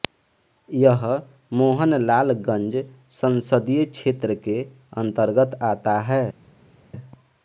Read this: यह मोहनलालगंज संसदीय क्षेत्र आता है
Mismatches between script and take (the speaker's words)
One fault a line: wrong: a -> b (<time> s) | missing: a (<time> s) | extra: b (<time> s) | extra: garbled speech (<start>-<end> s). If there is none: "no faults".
extra: के अंतर्गत (4.5 s)